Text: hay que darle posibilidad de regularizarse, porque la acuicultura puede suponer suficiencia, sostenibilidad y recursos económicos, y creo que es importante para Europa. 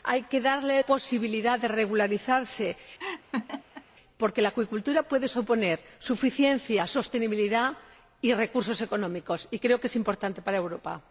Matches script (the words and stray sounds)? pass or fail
fail